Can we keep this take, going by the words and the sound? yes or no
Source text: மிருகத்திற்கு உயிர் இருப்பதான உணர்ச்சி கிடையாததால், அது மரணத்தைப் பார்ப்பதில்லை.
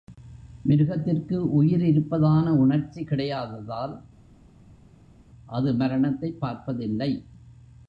yes